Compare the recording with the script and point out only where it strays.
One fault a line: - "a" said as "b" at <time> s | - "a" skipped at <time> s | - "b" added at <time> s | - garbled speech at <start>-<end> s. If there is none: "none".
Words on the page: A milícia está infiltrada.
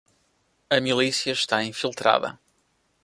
none